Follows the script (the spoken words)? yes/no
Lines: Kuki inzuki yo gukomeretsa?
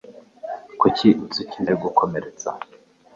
yes